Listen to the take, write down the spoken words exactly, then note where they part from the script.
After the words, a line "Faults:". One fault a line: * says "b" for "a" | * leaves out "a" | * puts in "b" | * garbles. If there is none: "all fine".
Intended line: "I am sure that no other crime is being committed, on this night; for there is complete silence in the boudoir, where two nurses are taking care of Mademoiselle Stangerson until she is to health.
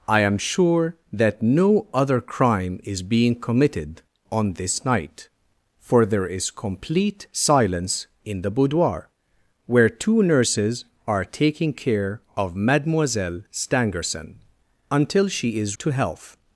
"I am sure that no other crime is being committed, on this night; for there is complete silence in the boudoir, where two nurses are taking care of Mademoiselle Stangerson until she is to health.
Faults:
all fine